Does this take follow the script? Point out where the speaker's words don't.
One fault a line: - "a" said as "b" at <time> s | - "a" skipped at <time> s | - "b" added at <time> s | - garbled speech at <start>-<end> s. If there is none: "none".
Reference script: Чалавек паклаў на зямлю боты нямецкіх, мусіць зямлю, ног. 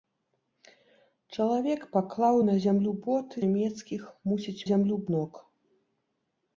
none